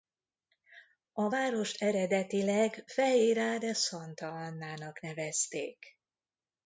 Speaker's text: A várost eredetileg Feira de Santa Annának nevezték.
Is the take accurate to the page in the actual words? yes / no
yes